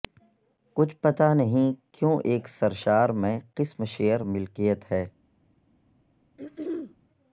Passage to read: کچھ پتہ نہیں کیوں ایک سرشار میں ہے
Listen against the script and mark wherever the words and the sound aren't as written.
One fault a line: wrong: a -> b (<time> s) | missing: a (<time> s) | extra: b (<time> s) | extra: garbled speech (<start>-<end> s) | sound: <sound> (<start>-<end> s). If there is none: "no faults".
extra: قسم شیئر ملکیت (3.5 s)
sound: throat clearing (6.4-7.0 s)